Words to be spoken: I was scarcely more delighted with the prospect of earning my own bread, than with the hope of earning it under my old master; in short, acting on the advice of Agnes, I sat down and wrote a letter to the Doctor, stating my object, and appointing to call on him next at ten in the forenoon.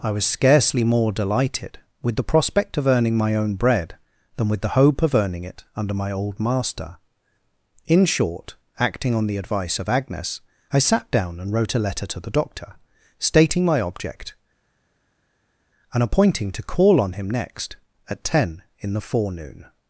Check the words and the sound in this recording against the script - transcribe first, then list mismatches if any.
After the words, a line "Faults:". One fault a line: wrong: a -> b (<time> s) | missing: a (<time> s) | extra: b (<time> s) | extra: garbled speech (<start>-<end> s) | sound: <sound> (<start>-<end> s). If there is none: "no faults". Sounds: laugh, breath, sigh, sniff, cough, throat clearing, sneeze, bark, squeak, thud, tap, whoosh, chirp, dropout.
I was scarcely more delighted with the prospect of earning my own bread, than with the hope of earning it under my old master; in short, acting on the advice of Agnes, I sat down and wrote a letter to the Doctor, stating my object, and appointing to call on him next at ten in the forenoon.
Faults:
no faults